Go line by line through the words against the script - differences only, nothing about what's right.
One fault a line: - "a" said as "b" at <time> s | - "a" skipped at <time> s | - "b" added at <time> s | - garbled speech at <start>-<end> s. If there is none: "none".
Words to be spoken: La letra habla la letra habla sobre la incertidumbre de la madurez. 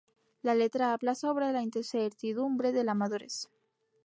- "la letra habla" skipped at 1.1 s